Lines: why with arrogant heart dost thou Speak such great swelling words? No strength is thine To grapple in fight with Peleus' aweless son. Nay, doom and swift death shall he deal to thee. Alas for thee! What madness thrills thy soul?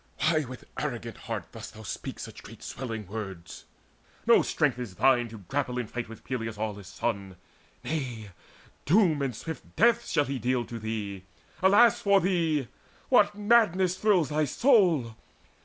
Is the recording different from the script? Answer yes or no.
no